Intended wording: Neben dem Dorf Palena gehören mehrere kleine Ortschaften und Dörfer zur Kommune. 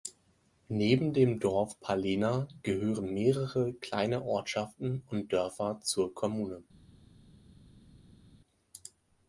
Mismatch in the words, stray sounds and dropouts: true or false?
false